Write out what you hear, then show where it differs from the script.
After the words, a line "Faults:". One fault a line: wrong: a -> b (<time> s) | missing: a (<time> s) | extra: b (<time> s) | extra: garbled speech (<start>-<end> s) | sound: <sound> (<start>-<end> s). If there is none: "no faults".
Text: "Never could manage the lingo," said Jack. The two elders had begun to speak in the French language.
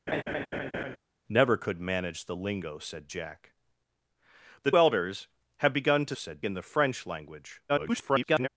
"Never could manage the lingo," said Jack. The elders had begun to said in the French language. [garbled]
Faults:
sound: laugh (0.1-1.0 s)
missing: two (4.7 s)
wrong: speak -> said (6.1 s)
extra: garbled speech (7.7-8.5 s)